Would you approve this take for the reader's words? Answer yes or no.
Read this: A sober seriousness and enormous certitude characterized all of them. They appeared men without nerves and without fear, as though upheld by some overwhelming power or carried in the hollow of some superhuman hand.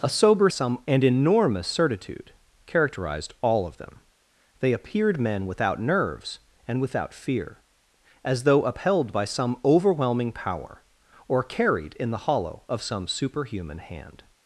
no